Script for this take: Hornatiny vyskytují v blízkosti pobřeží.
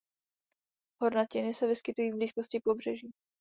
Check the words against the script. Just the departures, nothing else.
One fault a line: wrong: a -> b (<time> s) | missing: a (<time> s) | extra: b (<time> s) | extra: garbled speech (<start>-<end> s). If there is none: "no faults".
extra: se (1.5 s)